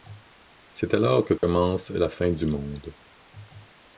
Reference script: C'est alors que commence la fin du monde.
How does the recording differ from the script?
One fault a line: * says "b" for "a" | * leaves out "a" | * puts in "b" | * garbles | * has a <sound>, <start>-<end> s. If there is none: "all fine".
* has a dropout, 1.4-1.4 s